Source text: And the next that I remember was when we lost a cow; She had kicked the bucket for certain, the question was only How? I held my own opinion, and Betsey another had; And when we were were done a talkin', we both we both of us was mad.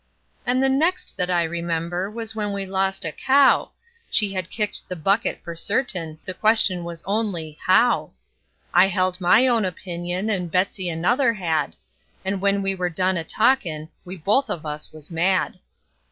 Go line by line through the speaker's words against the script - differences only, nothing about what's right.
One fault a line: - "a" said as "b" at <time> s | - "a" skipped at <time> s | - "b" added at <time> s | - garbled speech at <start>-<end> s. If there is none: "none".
- "were" skipped at 12.9 s
- "we both" skipped at 14.5 s